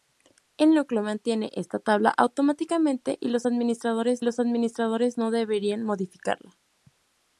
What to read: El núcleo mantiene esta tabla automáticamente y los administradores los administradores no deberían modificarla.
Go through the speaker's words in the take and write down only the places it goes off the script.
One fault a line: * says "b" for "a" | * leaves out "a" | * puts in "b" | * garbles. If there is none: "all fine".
all fine